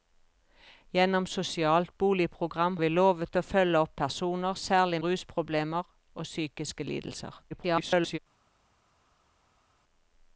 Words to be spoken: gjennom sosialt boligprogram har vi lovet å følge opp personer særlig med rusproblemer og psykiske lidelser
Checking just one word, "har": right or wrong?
wrong